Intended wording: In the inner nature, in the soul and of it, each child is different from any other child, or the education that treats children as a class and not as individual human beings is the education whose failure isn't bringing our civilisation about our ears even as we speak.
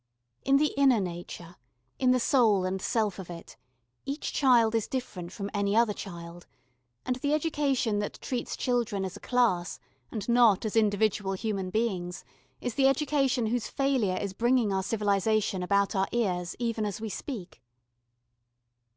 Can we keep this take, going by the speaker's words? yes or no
no